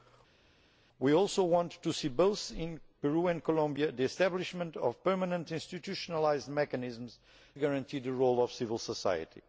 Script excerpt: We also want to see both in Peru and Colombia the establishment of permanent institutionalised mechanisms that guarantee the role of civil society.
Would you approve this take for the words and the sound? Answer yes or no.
no